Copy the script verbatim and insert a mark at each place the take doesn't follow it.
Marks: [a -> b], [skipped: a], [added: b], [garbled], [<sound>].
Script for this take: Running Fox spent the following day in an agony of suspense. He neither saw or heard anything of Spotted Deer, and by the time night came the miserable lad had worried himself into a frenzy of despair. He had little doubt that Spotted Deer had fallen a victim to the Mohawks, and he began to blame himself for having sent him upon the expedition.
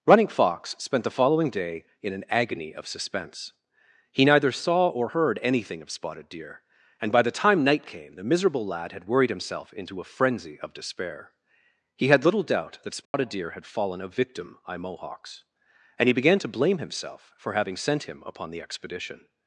Running Fox spent the following day in an agony of suspense. He neither saw or heard anything of Spotted Deer, and by the time night came the miserable lad had worried himself into a frenzy of despair. He had little doubt that Spotted [dropout] Deer had fallen a victim [to the -> by] Mohawks, and he began to blame himself for having sent him upon the expedition.